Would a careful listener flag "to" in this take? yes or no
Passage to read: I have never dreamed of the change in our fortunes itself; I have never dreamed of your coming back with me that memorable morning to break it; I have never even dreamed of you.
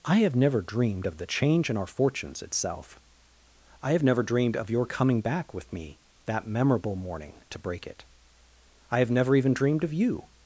no